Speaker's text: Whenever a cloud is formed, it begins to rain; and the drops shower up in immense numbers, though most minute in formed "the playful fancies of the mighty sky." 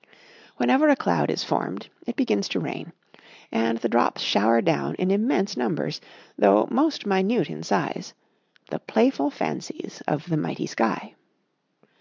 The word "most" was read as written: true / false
true